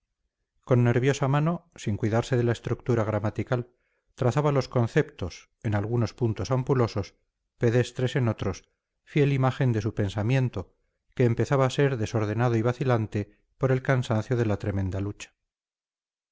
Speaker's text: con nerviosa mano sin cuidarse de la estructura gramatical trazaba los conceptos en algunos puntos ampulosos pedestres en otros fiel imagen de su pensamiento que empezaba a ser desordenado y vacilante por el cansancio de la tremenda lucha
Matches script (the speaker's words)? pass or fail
pass